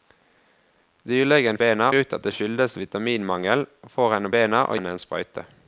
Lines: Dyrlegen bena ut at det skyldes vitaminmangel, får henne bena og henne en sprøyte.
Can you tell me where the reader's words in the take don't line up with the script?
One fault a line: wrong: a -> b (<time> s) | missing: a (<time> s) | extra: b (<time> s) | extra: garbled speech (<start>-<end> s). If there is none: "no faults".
no faults